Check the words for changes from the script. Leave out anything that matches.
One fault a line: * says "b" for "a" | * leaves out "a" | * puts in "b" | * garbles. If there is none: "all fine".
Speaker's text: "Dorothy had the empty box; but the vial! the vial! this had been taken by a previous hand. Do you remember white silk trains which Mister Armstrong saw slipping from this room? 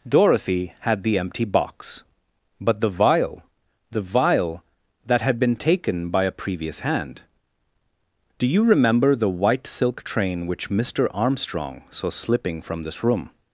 * says "that" for "this"
* puts in "the"
* says "train" for "trains"